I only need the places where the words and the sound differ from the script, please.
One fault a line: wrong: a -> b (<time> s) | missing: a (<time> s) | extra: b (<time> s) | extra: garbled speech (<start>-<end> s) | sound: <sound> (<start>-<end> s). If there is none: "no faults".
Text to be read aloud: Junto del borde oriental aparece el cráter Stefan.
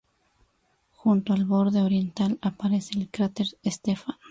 wrong: del -> al (1.3 s)